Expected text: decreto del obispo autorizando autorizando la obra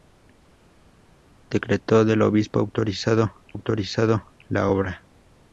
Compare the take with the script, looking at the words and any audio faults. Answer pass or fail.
pass